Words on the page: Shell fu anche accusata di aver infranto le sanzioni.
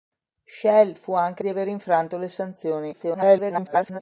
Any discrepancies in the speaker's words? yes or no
yes